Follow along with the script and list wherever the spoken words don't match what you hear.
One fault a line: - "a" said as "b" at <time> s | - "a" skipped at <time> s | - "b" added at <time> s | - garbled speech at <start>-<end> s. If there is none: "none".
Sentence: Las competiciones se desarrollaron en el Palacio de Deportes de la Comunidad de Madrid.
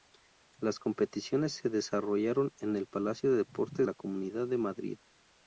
- "de" skipped at 3.9 s